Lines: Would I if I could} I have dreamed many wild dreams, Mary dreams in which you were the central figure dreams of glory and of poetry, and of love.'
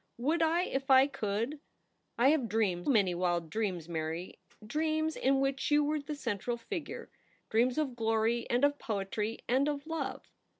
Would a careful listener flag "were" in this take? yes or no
no